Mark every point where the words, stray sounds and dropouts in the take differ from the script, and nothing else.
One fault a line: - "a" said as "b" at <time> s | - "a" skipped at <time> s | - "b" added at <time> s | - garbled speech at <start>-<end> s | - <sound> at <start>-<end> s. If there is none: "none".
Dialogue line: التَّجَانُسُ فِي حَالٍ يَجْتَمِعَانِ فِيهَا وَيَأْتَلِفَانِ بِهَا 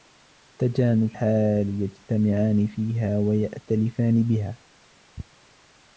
- "فِي" skipped at 1.2 s